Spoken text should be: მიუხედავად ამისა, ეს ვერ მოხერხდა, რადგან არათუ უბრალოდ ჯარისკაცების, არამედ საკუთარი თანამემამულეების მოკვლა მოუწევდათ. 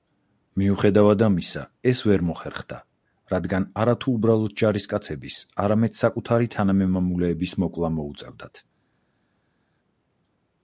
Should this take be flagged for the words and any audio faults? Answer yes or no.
no